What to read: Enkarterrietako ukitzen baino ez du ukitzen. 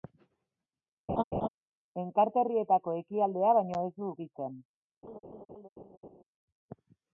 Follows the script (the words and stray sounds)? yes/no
no